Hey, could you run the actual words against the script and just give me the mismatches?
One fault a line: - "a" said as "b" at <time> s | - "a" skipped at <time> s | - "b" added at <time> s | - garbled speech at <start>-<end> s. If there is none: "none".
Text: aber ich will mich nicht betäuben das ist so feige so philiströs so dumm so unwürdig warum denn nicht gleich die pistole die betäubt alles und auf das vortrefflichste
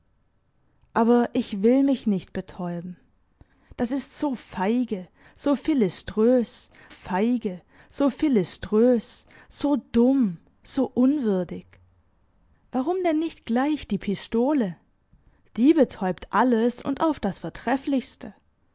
- "feige so philiströs" added at 6.9 s